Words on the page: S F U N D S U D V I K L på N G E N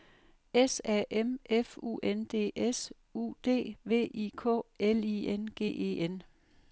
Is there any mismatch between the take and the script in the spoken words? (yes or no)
yes